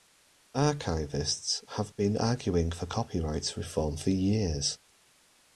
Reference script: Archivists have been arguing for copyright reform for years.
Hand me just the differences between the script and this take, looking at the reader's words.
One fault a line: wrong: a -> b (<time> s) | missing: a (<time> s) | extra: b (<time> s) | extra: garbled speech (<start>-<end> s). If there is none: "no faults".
no faults